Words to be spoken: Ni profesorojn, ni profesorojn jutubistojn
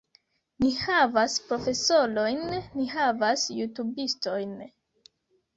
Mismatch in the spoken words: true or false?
true